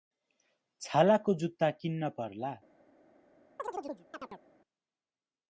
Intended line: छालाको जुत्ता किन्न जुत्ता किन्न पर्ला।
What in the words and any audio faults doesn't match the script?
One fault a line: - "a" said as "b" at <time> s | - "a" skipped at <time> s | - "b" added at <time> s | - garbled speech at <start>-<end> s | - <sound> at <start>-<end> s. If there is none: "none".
- "जुत्ता किन्न" skipped at 2.1 s
- chirp at 3.6-4.4 s